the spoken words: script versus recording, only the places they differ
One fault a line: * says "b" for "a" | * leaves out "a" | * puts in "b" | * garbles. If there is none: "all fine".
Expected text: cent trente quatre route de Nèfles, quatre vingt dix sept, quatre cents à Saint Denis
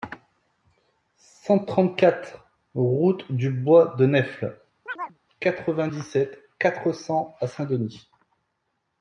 * puts in "du Bois"